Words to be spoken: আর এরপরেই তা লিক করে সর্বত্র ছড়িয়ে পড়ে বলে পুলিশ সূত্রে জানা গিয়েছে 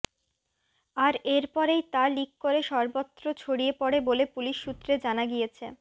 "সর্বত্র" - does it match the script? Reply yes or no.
yes